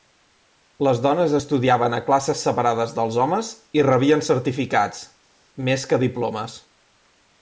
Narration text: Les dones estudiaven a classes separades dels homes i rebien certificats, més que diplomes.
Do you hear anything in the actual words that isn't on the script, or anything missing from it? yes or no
no